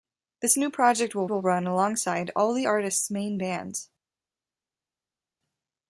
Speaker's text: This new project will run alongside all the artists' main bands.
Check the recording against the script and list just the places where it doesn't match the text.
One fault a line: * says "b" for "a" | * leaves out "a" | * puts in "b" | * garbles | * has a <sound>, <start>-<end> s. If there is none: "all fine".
* puts in "will"